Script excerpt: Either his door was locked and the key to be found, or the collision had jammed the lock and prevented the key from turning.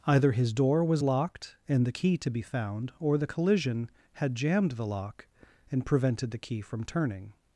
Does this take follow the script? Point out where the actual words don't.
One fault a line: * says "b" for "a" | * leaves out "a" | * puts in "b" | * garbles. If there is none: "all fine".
all fine